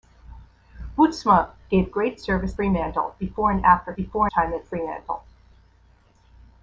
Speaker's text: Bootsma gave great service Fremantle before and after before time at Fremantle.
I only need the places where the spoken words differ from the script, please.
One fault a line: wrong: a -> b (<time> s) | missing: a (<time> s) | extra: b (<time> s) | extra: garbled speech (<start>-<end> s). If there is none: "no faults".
no faults